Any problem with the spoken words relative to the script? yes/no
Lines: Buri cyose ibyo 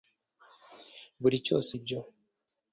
no